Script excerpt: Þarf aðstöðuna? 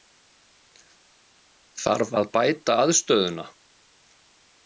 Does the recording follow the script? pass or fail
fail